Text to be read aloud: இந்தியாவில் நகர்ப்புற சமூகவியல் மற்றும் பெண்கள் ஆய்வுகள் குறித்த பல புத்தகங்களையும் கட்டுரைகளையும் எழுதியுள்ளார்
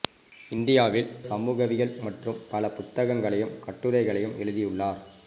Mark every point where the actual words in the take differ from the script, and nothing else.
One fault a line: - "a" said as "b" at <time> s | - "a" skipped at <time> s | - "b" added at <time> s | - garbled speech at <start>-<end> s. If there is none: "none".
- "நகர்ப்புற" skipped at 1.1 s
- "பெண்கள் ஆய்வுகள் குறித்த" skipped at 2.4 s